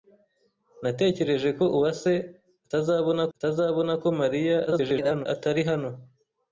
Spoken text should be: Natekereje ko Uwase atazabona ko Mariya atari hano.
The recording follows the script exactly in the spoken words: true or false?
false